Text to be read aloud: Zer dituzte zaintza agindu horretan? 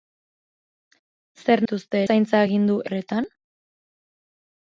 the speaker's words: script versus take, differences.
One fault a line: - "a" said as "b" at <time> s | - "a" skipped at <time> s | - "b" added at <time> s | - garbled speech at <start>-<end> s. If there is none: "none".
none